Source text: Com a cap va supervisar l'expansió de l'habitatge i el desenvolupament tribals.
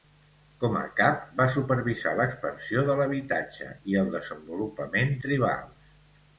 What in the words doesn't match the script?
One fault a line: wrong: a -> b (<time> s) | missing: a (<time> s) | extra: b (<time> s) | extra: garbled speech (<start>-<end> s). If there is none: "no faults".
no faults